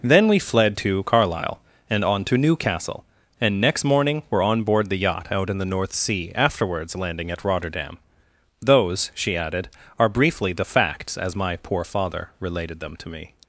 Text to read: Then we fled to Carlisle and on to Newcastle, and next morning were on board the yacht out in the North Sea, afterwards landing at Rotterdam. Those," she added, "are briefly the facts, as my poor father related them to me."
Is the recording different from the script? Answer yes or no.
no